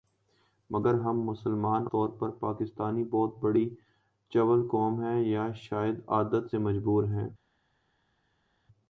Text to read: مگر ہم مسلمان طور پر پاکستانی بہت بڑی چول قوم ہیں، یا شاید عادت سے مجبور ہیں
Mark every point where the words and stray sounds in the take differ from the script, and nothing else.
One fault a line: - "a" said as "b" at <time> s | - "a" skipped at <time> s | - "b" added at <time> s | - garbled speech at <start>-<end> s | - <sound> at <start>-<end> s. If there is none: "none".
none